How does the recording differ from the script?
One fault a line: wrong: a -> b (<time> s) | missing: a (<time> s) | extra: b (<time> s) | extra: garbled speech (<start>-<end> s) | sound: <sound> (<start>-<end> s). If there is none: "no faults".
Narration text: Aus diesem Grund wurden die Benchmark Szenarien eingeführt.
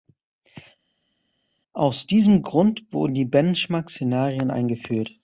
no faults